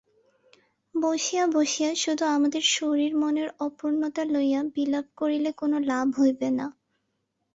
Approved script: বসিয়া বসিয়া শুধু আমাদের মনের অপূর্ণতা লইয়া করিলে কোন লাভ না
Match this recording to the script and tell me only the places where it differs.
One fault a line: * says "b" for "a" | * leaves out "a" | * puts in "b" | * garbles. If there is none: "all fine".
* puts in "শরীর"
* puts in "বিলাপ"
* puts in "হইবে"